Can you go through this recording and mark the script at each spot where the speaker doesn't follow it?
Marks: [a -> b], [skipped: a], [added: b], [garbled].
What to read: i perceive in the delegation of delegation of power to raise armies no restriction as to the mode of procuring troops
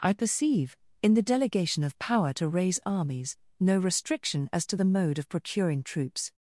i perceive in the delegation of [skipped: delegation of] power to raise armies no restriction as to the mode of procuring troops